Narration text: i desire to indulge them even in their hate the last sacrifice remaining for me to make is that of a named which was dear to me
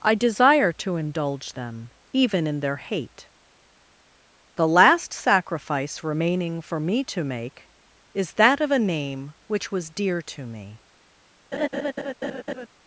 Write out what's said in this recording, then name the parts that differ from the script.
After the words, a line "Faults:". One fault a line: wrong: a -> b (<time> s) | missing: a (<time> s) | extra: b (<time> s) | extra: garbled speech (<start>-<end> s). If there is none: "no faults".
i desire to indulge them even in their hate the last sacrifice remaining for me to make is that of a name which was dear to me
Faults:
wrong: named -> name (8.9 s)